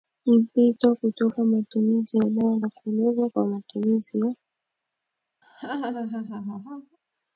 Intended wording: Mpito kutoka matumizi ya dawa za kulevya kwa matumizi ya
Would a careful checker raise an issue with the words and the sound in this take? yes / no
yes